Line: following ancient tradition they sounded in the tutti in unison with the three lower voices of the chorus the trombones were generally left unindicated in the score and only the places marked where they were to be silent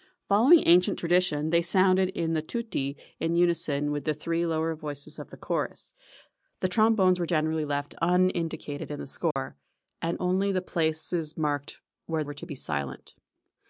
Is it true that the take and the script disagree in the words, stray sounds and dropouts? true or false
true